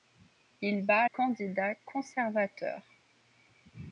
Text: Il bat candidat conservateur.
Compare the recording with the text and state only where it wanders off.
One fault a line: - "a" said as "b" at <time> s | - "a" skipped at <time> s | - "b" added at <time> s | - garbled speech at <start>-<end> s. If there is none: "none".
none